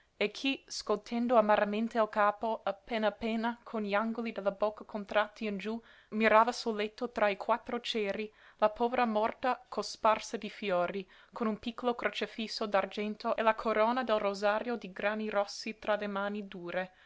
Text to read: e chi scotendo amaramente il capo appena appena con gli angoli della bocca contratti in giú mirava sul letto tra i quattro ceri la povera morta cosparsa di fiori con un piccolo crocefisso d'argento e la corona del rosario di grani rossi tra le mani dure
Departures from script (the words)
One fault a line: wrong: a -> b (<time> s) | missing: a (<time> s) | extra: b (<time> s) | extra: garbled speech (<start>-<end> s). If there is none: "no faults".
no faults